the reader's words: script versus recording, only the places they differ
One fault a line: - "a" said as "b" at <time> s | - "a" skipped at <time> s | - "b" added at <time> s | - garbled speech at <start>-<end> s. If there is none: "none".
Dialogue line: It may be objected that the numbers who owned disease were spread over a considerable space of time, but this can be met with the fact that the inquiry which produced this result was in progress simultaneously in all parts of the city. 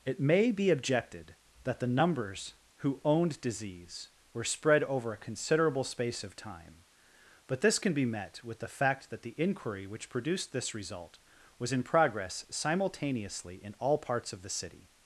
none